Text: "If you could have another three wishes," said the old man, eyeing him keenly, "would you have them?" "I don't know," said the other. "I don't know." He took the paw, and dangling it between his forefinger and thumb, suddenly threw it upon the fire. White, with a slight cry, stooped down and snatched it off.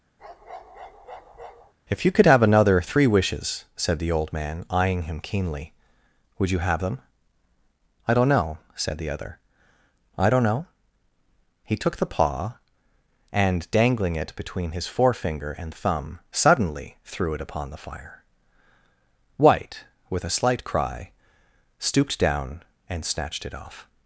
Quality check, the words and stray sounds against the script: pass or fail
fail